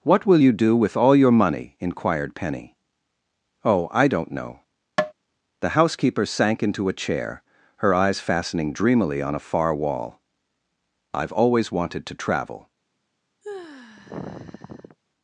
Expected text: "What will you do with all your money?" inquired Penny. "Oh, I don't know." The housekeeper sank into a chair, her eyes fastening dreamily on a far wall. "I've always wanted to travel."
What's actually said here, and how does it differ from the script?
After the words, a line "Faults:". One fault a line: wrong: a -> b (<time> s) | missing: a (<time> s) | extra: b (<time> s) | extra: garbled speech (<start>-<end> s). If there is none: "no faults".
"What will you do with all your money?" inquired Penny. "Oh, I don't know." The housekeeper sank into a chair, her eyes fastening dreamily on a far wall. "I've always wanted to travel."
Faults:
no faults